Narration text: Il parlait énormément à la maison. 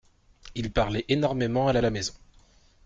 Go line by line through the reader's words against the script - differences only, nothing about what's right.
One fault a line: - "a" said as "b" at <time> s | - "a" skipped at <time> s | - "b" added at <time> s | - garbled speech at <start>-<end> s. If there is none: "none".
- "la" added at 1.8 s